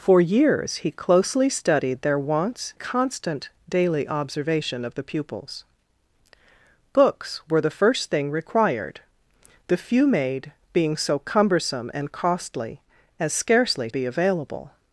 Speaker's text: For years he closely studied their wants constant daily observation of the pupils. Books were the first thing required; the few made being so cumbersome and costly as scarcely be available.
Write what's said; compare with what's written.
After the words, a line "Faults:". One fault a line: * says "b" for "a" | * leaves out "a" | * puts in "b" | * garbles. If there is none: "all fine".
For years he closely studied their wants constant daily observation of the pupils. Books were the first thing required; the few made being so cumbersome and costly as scarcely be available.
Faults:
all fine